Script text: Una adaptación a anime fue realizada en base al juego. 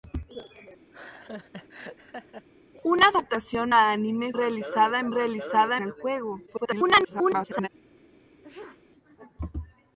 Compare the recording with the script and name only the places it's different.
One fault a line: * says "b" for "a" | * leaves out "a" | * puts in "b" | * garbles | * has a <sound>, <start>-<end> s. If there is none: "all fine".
* has a laugh, 0.9-2.5 s
* leaves out "fue"
* says "realizada" for "base"
* garbles
* has a sneeze, 8.4-8.8 s